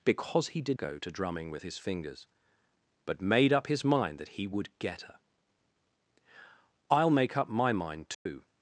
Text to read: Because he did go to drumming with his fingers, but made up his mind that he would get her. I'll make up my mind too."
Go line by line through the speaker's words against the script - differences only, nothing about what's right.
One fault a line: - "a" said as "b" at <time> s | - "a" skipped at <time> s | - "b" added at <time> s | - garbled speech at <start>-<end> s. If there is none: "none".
none